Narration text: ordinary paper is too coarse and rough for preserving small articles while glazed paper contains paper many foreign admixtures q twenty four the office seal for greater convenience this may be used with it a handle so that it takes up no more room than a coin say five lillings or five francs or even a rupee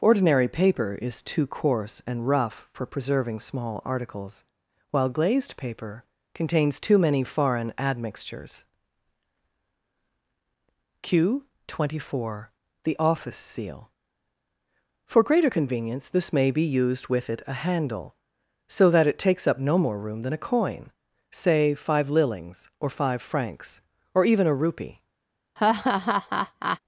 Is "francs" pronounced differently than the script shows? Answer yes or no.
no